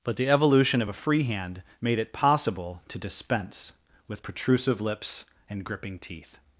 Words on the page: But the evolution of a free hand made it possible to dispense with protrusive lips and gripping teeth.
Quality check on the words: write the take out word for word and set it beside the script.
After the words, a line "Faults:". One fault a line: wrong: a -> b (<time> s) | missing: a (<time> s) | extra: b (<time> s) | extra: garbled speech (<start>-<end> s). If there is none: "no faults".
But the evolution of a free hand made it possible to dispense with protrusive lips and gripping teeth.
Faults:
no faults